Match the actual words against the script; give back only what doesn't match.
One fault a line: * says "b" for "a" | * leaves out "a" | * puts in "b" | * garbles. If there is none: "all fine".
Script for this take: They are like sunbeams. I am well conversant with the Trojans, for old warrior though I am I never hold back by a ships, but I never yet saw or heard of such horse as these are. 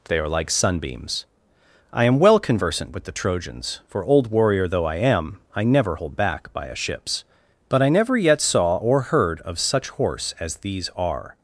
all fine